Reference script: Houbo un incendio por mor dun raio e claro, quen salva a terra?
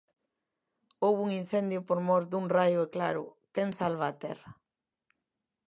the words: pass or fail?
pass